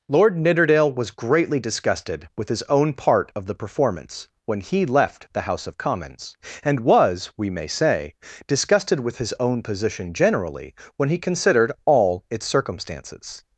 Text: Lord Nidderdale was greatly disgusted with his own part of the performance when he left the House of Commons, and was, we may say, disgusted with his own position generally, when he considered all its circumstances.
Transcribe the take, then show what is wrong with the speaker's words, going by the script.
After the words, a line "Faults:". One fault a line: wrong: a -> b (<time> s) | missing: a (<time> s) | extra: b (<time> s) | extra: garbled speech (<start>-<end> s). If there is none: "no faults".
Lord Nidderdale was greatly disgusted with his own part of the performance when he left the House of Commons, and was, we may say, disgusted with his own position generally, when he considered all its circumstances.
Faults:
no faults